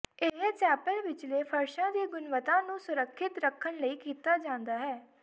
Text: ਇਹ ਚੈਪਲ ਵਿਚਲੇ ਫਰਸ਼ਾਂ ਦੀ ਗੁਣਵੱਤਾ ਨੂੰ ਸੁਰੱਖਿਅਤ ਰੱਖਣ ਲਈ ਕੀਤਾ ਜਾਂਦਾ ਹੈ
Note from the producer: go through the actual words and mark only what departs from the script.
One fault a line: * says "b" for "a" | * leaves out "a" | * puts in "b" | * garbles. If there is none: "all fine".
all fine